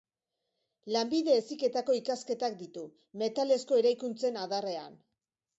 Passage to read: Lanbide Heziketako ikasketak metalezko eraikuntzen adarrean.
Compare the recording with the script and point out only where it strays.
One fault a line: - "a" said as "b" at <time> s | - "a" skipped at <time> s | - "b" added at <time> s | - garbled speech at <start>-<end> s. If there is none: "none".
- "ditu" added at 2.6 s